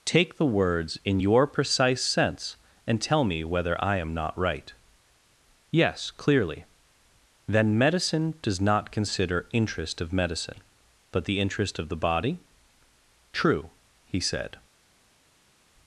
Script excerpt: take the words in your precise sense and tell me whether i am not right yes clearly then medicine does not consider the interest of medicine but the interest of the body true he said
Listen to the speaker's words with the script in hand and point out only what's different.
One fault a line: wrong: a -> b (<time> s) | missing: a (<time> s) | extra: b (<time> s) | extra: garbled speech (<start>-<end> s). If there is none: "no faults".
missing: the (9.5 s)